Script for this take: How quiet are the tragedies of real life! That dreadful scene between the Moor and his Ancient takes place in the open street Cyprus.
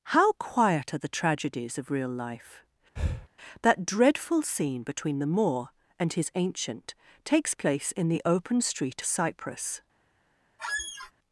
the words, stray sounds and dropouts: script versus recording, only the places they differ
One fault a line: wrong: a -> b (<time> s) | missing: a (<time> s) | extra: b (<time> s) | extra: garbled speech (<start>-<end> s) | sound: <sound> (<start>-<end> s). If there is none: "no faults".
sound: breath (3.0-3.3 s)
sound: squeak (10.6-11.1 s)